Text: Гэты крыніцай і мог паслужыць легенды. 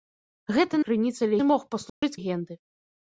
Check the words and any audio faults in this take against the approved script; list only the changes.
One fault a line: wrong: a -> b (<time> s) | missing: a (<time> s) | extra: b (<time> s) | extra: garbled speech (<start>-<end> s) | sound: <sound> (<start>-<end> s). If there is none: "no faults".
sound: dropout (1.9-2.0 s)